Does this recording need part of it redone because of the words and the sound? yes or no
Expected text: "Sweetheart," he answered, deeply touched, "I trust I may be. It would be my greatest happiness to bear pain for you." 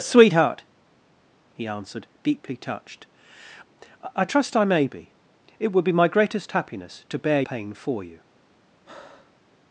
yes